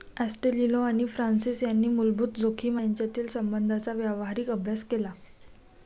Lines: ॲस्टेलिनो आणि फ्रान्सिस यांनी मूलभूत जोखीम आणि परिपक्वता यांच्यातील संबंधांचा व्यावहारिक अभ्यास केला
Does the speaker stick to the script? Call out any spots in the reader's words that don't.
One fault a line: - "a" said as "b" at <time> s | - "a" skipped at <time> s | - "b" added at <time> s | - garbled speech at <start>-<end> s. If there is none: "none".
- "आणि परिपक्वता" skipped at 2.8 s